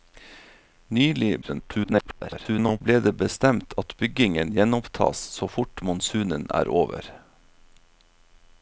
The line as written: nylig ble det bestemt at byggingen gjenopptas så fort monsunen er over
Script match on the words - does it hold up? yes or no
no